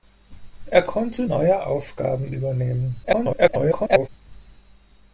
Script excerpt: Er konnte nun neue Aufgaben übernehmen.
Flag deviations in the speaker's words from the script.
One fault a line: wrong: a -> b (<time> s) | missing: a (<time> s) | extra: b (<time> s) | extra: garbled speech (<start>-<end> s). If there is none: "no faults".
missing: nun (1.3 s)
extra: garbled speech (3.0-4.1 s)